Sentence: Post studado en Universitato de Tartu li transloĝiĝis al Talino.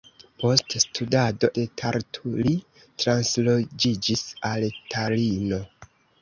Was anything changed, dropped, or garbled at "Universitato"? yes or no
yes